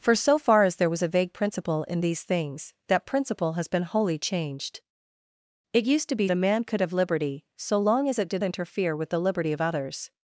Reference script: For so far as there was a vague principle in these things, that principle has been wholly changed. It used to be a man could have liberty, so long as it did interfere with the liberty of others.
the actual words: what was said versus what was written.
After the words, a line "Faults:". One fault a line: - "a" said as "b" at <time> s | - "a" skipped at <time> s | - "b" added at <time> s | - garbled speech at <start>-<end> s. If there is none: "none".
For so far as there was a vague principle in these things, that principle has been wholly changed. It used to be a man could have liberty, so long as it did interfere with the liberty of others.
Faults:
none